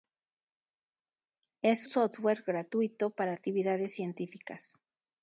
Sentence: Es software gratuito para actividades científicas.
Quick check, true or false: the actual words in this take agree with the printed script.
true